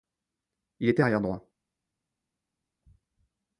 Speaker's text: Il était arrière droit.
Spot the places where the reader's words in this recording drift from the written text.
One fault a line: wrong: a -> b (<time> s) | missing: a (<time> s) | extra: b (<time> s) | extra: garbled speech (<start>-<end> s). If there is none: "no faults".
no faults